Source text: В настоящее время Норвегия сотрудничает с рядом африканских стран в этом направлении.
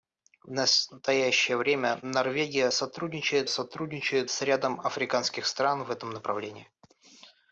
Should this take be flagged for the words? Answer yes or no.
yes